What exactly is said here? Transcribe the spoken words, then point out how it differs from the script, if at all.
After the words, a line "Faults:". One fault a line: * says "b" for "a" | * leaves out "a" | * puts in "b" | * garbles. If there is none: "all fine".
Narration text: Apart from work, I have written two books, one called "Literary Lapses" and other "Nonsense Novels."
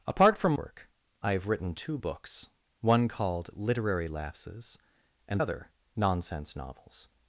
Apart from work, I have written two books, one called "Literary Lapses" and other "Nonsense Novels."
Faults:
all fine